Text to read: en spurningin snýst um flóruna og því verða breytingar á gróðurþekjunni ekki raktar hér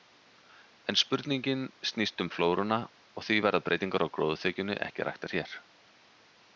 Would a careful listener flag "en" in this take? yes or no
no